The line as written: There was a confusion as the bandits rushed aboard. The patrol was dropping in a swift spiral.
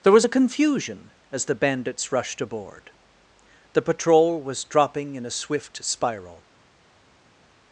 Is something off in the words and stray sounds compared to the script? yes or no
no